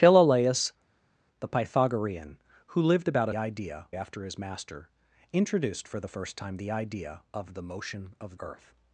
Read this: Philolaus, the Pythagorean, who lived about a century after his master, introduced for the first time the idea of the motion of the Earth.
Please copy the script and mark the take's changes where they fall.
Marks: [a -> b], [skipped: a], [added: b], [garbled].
Philolaus, the Pythagorean, who lived about a [century -> idea] after his master, introduced for the first time the idea of the motion of [skipped: the] Earth.